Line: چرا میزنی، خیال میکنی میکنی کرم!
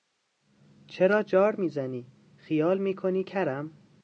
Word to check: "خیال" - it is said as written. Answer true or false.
true